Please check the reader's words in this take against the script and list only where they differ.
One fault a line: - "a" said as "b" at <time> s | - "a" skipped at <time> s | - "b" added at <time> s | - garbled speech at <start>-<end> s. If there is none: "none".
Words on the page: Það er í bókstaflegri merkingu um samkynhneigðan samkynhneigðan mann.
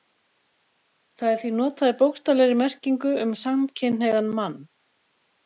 - "því notað" added at 1.4 s
- "samkynhneigðan" skipped at 4.3 s